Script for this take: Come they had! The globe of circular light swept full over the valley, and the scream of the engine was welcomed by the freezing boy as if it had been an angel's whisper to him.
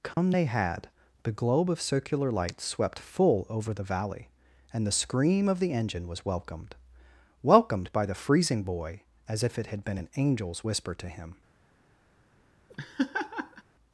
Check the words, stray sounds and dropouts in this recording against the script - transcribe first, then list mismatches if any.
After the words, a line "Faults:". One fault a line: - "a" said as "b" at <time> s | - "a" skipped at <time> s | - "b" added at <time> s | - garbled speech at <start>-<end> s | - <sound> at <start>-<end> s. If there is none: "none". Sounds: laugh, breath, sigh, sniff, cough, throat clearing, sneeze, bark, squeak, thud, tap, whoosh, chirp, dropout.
Come they had! The globe of circular light swept full over the valley, and the scream of the engine was welcomed welcomed by the freezing boy as if it had been an angel's whisper to him.
Faults:
- dropout at 0.1-0.2 s
- "welcomed" added at 7.4 s
- laugh at 12.7-13.6 s